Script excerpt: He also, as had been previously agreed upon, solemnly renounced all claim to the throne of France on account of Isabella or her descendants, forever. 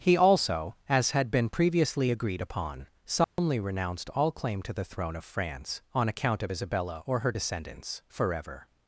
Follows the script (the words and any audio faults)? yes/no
no